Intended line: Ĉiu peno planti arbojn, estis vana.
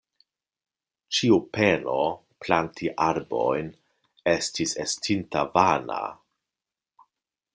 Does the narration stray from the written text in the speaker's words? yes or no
yes